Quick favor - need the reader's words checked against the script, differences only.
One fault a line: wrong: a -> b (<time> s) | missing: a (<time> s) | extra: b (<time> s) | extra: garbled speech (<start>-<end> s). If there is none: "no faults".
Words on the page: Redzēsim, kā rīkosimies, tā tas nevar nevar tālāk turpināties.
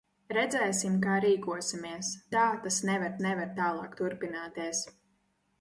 no faults